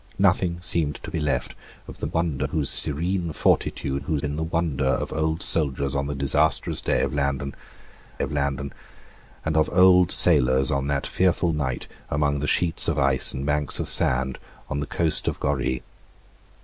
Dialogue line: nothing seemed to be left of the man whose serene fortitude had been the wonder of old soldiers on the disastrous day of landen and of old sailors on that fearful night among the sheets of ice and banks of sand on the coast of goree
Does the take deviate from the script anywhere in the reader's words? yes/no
yes